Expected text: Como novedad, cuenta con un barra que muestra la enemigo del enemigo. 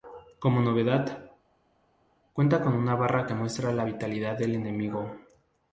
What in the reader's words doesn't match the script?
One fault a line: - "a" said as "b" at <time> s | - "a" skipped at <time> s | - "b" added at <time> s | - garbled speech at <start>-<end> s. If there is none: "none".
- "un" said as "una" at 2.7 s
- "enemigo" said as "vitalidad" at 3.8 s